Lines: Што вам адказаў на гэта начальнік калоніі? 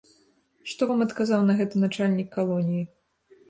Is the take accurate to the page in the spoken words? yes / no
yes